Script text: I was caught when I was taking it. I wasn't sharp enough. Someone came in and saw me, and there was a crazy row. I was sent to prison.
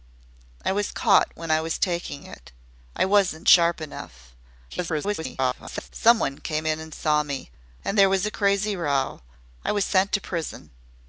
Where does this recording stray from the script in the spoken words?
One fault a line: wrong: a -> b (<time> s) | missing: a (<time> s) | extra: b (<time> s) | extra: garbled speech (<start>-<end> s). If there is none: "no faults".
extra: garbled speech (4.7-5.9 s)